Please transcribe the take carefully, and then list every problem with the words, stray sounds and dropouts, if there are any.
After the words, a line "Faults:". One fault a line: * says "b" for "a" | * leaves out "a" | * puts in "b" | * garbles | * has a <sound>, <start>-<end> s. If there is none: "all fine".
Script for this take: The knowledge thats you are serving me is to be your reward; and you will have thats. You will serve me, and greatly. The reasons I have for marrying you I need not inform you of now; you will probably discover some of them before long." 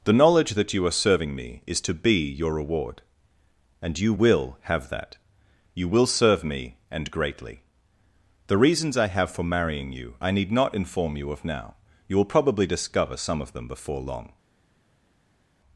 The knowledge that you are serving me is to be your reward; and you will have that. You will serve me, and greatly. The reasons I have for marrying you I need not inform you of now; you will probably discover some of them before long."
Faults:
* says "that" for "thats"
* says "that" for "thats"